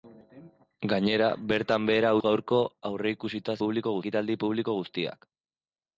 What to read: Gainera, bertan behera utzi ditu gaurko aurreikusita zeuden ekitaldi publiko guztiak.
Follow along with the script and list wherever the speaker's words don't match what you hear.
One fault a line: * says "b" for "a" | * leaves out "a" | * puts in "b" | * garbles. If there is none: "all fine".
* leaves out "utzi ditu"
* says "publiko" for "zeuden"